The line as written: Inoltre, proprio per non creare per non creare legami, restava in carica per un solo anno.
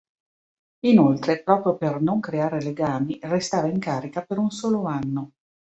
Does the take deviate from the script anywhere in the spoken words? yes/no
yes